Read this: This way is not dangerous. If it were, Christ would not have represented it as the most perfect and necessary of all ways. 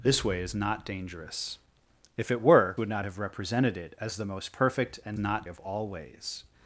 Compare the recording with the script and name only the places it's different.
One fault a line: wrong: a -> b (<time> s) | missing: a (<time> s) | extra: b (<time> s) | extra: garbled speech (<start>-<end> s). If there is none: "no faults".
missing: Christ (2.8 s)
wrong: necessary -> not (5.2 s)